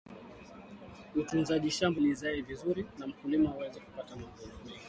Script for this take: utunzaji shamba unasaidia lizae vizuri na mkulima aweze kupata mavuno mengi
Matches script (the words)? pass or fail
fail